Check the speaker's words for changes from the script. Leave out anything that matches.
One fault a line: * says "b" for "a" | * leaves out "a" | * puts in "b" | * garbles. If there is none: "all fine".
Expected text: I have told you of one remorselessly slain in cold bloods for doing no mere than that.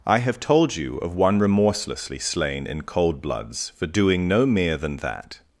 all fine